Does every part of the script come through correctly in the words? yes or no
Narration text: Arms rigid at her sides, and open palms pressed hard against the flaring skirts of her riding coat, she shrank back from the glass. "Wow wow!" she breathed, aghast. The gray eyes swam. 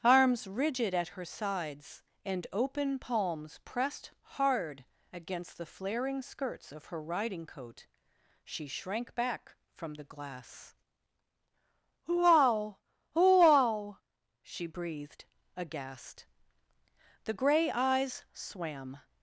yes